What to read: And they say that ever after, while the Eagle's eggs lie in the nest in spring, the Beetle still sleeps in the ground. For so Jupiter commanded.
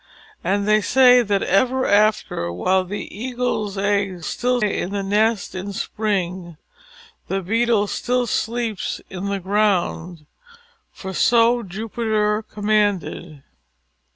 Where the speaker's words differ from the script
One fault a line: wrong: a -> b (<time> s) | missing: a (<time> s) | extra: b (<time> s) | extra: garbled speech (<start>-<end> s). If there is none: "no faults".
wrong: lie -> still (4.2 s)